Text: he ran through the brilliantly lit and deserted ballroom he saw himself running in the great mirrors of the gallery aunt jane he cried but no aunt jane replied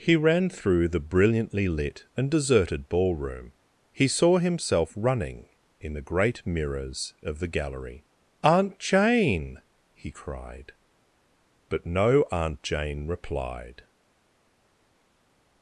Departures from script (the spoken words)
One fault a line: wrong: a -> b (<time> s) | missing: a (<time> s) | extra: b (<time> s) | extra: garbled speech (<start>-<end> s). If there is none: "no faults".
no faults